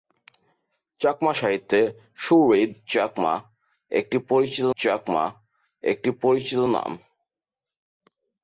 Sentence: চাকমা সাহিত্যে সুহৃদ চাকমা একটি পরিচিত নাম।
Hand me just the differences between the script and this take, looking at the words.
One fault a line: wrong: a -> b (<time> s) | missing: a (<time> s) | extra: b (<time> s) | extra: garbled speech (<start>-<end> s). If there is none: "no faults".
extra: চাকমা একটি পরিচিত (4.8 s)